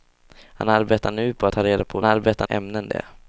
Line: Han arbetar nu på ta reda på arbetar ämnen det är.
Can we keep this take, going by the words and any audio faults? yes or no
yes